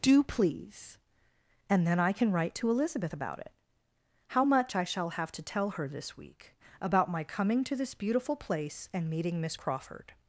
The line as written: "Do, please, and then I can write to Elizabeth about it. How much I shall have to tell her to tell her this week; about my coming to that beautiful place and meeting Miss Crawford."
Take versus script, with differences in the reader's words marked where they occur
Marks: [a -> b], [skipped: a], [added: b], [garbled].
"Do, please, and then I can write to Elizabeth about it. How much I shall have to tell her [skipped: to tell her] this week; about my coming to [that -> this] beautiful place and meeting Miss Crawford."